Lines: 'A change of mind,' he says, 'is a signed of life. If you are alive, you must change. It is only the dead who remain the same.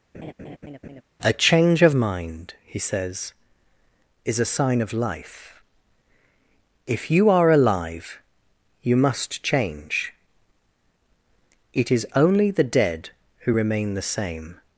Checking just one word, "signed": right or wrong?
wrong